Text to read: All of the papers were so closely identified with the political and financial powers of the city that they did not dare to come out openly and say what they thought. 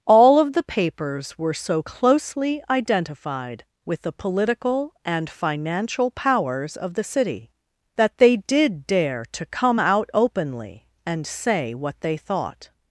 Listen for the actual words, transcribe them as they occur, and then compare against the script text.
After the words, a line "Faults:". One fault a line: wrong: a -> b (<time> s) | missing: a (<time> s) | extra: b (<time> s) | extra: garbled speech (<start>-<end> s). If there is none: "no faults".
All of the papers were so closely identified with the political and financial powers of the city that they did dare to come out openly and say what they thought.
Faults:
missing: not (8.9 s)